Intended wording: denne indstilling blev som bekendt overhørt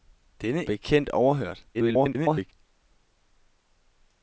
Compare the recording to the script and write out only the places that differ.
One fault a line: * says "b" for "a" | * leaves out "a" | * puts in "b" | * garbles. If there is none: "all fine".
* leaves out "indstilling blev som"
* garbles